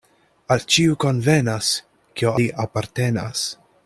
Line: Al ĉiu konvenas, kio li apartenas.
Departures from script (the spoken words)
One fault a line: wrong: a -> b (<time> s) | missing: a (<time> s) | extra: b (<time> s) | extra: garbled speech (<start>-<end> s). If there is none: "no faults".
no faults